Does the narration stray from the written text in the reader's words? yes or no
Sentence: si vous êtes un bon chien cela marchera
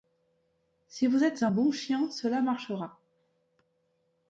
no